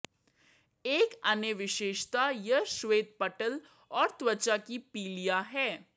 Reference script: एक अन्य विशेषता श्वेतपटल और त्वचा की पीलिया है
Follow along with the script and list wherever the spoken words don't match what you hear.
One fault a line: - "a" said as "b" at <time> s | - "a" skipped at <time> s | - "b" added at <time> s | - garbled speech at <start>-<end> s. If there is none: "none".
- "यह" added at 2.3 s